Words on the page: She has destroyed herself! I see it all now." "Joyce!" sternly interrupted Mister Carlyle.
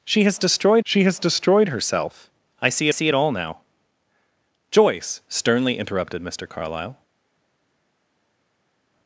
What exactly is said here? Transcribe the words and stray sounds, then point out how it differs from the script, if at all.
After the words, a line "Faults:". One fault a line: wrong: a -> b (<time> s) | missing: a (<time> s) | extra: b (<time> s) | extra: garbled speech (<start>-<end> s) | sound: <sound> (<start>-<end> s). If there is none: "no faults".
She has destroyed she has destroyed herself! I see see it all now." "Joyce!" sternly interrupted Mister Carlyle.
Faults:
extra: she has destroyed (0.8 s)
extra: see (2.9 s)